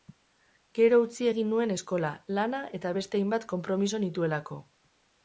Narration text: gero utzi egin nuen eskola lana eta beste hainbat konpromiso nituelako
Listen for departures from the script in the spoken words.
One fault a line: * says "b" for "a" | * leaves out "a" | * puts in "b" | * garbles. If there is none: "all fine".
all fine